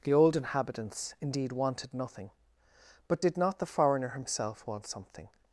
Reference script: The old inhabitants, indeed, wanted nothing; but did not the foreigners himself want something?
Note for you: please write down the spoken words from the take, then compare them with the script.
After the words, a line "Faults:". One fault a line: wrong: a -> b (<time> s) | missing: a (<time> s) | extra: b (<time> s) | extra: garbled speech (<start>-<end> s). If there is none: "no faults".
The old inhabitants, indeed, wanted nothing; but did not the foreigner himself want something?
Faults:
wrong: foreigners -> foreigner (3.6 s)